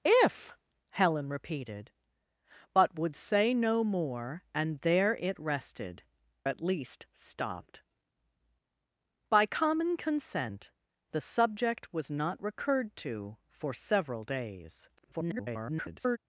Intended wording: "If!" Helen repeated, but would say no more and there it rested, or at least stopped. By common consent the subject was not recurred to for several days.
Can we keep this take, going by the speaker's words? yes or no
no